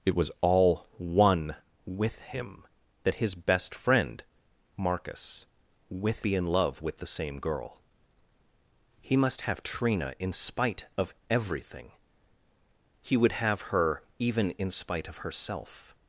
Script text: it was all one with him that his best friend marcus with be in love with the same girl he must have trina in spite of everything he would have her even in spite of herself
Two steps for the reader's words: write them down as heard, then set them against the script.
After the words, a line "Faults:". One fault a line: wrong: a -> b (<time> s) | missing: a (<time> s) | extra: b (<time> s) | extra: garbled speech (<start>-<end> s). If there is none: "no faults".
it was all one with him that his best friend marcus with be in love with the same girl he must have trina in spite of everything he would have her even in spite of herself
Faults:
no faults